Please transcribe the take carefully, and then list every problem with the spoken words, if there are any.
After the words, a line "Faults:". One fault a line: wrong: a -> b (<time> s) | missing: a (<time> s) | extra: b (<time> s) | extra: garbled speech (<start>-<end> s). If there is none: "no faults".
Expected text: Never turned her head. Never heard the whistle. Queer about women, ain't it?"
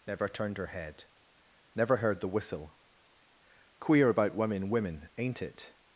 Never turned her head. Never heard the whistle. Queer about women women, ain't it?"
Faults:
extra: women (4.7 s)